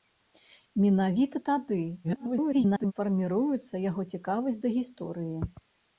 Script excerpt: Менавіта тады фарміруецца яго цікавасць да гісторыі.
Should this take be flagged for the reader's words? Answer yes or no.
yes